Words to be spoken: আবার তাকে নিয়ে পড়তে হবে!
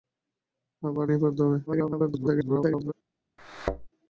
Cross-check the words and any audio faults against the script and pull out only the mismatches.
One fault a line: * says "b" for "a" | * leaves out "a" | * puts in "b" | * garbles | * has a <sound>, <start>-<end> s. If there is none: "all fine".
* leaves out "তাকে"
* garbles
* has a thud, 3.4-3.9 s